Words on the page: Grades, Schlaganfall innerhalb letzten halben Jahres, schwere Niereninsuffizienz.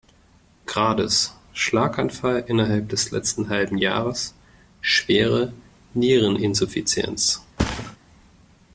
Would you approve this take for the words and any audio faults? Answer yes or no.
no